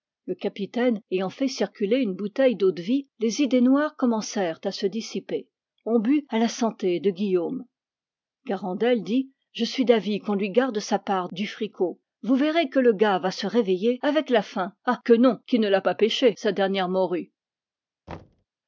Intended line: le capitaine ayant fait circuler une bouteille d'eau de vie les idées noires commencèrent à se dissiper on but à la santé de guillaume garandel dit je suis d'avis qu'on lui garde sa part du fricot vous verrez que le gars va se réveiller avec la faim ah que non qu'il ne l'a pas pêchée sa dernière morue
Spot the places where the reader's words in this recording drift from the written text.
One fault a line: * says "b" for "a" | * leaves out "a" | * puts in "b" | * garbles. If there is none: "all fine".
all fine